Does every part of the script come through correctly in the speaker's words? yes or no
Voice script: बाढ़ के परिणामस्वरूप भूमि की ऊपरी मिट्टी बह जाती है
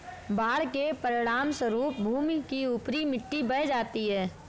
yes